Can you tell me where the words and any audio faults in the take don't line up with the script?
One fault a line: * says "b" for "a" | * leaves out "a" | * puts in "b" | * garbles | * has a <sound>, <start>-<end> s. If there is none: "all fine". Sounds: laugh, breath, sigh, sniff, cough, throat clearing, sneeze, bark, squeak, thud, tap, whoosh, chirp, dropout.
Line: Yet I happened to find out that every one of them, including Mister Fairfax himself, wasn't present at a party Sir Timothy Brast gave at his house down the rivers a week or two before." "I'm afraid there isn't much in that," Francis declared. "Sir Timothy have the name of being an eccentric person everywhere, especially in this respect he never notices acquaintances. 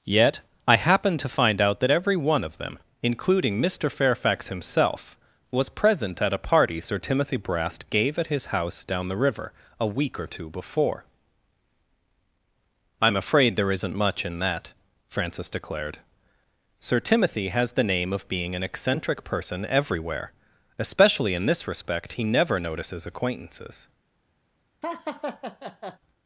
* says "was" for "wasn't"
* says "river" for "rivers"
* says "has" for "have"
* has a laugh, 24.8-26.0 s